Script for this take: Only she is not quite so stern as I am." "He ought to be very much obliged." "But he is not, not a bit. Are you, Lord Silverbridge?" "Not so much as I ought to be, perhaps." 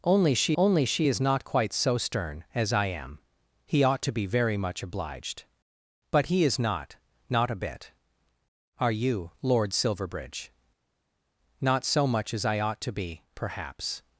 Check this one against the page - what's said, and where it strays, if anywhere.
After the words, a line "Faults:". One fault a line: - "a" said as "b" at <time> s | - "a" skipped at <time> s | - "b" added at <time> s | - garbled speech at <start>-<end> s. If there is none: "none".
Only she only she is not quite so stern as I am." "He ought to be very much obliged." "But he is not, not a bit. Are you, Lord Silverbridge?" "Not so much as I ought to be, perhaps."
Faults:
- "only she" added at 0.5 s